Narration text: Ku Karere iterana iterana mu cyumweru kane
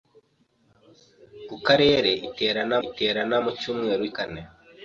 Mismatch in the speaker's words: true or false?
false